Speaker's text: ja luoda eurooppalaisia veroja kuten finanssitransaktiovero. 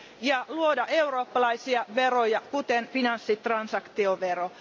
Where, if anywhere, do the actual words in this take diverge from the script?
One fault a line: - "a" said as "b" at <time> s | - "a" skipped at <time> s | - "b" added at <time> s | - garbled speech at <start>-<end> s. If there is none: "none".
none